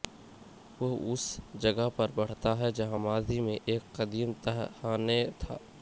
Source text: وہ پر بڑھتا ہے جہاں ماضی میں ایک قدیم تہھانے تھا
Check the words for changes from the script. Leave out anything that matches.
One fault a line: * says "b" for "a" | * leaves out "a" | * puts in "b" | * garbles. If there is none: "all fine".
* puts in "اس جگہ"